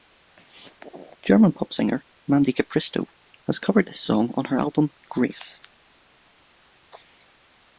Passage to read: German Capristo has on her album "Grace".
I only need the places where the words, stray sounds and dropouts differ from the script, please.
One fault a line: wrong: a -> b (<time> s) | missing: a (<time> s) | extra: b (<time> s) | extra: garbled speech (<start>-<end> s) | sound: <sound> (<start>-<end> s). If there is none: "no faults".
extra: pop singer Mandy (1.5 s)
extra: covered this song (3.6 s)